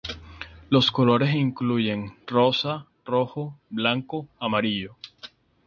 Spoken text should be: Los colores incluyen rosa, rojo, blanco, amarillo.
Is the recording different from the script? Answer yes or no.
no